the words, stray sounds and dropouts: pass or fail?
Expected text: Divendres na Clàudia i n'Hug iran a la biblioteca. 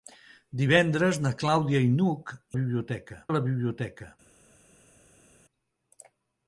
fail